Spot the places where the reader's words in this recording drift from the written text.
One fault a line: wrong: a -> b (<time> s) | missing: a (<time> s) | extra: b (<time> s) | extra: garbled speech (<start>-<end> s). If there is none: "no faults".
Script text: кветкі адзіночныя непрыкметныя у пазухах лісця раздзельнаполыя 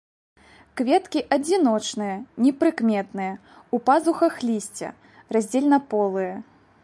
no faults